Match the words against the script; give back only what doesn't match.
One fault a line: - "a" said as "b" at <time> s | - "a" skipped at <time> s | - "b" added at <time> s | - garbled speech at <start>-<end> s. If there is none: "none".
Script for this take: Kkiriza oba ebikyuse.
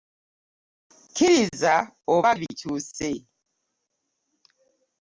none